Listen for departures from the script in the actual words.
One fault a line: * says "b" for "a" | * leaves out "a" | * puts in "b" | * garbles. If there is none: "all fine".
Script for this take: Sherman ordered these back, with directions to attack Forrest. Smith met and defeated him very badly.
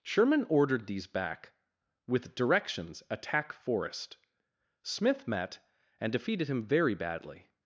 * leaves out "to"